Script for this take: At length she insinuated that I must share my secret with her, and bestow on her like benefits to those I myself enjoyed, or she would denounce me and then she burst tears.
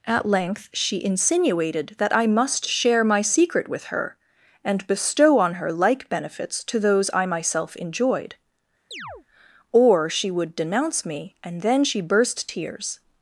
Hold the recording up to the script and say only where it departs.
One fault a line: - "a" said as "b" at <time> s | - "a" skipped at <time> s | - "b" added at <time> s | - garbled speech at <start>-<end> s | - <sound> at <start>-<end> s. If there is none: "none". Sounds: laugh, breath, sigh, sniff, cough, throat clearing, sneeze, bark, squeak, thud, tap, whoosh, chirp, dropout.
- chirp at 8.9-9.3 s